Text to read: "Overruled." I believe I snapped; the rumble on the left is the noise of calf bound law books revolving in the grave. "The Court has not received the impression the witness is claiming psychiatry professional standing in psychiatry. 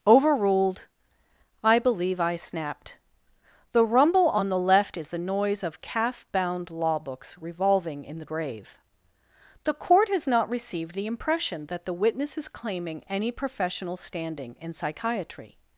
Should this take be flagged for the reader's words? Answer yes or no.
yes